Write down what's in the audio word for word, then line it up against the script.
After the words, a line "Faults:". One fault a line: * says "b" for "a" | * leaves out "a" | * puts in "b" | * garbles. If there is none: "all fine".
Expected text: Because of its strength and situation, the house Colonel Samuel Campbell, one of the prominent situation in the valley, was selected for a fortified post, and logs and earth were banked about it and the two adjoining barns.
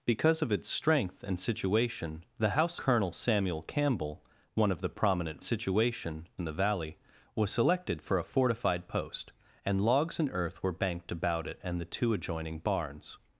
Because of its strength and situation, the house Colonel Samuel Campbell, one of the prominent situation in the valley, was selected for a fortified post, and logs and earth were banked about it and the two adjoining barns.
Faults:
all fine